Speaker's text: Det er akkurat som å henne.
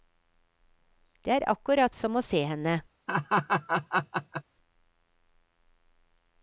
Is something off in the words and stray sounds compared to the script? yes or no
yes